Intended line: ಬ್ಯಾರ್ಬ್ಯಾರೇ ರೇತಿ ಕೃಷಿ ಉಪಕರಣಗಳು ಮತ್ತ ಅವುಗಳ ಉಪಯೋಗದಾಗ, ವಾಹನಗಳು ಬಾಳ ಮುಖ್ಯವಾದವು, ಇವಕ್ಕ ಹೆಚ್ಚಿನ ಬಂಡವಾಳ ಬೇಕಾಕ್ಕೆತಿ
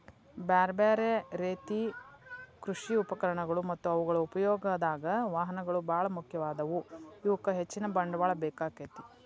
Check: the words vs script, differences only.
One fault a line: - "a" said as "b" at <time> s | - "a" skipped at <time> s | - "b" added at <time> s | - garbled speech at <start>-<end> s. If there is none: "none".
none